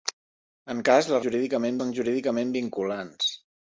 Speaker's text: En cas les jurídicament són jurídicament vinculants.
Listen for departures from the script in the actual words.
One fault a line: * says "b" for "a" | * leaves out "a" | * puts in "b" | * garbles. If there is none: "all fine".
all fine